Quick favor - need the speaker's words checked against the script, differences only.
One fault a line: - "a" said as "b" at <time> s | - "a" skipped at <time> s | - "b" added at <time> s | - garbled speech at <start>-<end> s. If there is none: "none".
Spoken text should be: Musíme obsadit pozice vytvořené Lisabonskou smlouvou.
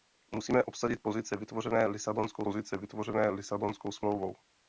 - "pozice vytvořené Lisabonskou" added at 2.4 s